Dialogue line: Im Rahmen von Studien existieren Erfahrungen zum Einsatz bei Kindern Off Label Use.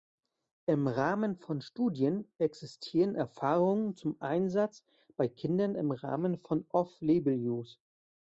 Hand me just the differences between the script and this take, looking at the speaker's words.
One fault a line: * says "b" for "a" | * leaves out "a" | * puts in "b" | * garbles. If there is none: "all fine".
* puts in "im Rahmen von"